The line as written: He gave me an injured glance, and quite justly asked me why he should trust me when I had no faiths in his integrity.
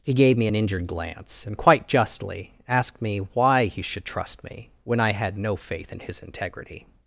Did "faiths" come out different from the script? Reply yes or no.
yes